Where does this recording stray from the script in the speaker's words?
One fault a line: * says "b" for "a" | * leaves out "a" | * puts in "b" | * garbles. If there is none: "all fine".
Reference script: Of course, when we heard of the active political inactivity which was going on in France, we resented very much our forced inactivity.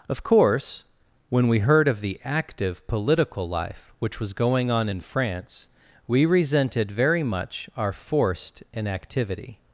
* says "life" for "inactivity"